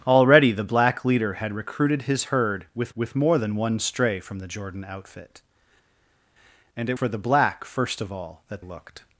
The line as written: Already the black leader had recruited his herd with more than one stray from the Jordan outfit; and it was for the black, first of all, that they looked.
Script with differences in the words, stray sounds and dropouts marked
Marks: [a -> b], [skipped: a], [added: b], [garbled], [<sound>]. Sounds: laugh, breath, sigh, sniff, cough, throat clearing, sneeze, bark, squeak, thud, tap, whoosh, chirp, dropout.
Already the black leader had recruited his herd with [added: with] more than one stray from the Jordan outfit; and it [skipped: was] for the black, first of all, that [skipped: they] looked.